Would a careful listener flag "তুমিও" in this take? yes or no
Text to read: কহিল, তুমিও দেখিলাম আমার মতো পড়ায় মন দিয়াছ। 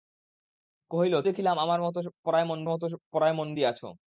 yes